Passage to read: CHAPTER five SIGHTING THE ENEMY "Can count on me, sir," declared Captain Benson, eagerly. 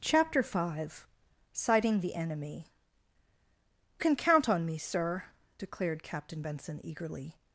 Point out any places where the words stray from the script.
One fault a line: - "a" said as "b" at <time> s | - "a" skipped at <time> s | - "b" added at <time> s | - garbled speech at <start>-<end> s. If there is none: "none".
none